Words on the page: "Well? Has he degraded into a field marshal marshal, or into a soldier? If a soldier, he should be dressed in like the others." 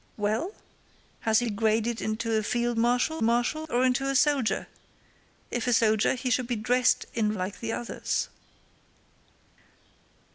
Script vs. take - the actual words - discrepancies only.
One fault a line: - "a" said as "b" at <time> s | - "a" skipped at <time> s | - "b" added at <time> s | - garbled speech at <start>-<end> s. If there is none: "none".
none